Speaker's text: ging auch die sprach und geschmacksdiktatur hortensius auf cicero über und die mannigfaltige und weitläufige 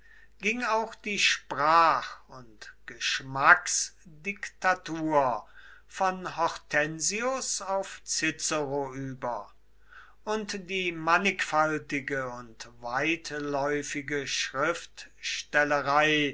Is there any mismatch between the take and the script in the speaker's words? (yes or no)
yes